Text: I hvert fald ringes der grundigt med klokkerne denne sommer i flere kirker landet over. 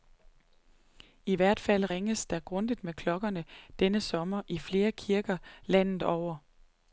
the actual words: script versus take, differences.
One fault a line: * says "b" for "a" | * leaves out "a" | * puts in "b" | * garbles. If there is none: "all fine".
all fine